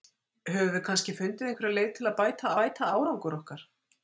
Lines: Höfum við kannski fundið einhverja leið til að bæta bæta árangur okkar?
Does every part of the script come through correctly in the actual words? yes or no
yes